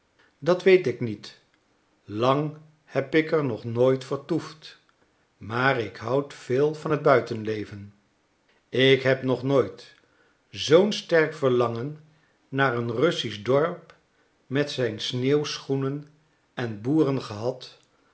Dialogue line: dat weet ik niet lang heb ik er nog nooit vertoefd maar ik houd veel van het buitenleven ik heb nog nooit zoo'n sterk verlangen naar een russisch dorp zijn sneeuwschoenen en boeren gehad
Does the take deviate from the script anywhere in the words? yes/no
yes